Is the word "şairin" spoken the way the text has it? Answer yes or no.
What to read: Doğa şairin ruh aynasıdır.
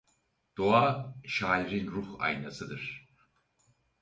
yes